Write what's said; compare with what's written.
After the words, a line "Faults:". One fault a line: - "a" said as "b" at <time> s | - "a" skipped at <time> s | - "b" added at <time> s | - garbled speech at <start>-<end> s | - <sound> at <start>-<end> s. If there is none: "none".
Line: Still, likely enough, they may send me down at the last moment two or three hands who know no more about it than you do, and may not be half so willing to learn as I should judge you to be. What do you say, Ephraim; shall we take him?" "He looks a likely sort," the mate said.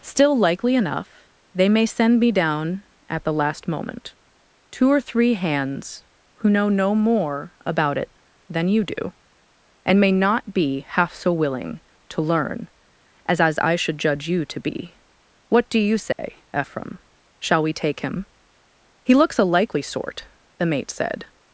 Still, likely enough, they may send me down at the last moment two or three hands who know no more about it than you do, and may not be half so willing to learn as as I should judge you to be. What do you say, Ephraim; shall we take him?" "He looks a likely sort," the mate said.
Faults:
- "as" added at 13.4 s
- dropout at 16.1-16.2 s